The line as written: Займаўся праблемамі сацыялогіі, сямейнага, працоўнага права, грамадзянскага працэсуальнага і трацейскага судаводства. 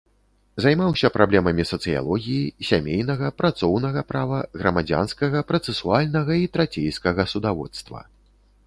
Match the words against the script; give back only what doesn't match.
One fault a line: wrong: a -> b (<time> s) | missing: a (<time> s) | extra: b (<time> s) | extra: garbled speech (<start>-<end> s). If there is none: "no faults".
no faults